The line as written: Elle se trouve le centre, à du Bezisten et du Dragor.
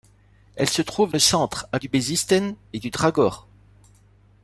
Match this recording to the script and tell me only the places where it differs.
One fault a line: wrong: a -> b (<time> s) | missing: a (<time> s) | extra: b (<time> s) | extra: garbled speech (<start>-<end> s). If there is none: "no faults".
no faults